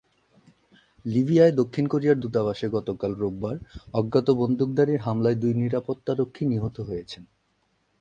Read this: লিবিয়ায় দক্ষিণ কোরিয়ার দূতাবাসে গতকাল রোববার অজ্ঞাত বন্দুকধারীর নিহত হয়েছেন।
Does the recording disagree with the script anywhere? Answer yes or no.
yes